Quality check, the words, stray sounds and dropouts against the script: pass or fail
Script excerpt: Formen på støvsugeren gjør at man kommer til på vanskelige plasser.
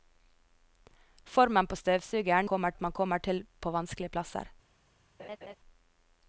fail